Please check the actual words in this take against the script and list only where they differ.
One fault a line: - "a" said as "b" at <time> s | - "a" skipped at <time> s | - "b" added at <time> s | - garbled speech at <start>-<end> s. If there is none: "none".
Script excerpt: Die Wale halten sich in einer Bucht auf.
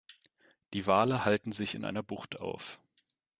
none